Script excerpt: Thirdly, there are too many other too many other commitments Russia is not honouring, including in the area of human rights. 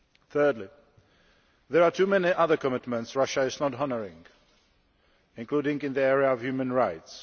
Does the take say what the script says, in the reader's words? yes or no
no